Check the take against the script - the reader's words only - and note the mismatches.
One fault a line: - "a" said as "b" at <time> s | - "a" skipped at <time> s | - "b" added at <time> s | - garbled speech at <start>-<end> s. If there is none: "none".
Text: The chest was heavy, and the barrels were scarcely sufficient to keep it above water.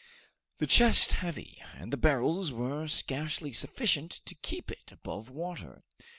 - "was" skipped at 1.1 s